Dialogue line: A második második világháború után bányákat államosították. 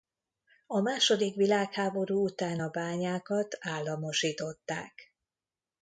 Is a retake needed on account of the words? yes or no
yes